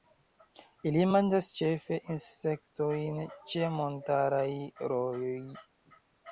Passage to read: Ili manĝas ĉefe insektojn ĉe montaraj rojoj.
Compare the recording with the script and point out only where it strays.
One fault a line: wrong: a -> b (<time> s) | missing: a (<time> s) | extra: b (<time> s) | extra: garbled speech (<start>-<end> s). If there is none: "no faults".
no faults